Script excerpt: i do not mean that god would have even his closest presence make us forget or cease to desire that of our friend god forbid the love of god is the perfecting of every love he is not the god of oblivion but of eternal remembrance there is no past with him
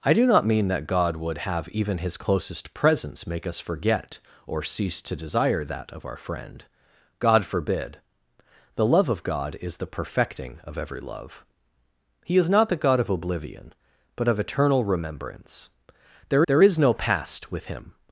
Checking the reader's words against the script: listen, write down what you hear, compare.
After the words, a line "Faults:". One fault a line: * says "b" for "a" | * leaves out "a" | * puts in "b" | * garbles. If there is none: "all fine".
i do not mean that god would have even his closest presence make us forget or cease to desire that of our friend god forbid the love of god is the perfecting of every love he is not the god of oblivion but of eternal remembrance there there is no past with him
Faults:
* puts in "there"